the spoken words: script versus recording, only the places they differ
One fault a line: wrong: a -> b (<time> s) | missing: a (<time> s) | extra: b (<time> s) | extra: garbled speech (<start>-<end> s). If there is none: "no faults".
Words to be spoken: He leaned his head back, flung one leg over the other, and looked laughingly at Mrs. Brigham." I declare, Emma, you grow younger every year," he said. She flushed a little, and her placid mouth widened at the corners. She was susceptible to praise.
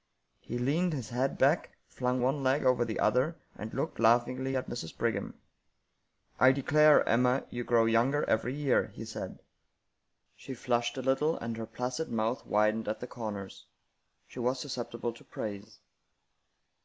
no faults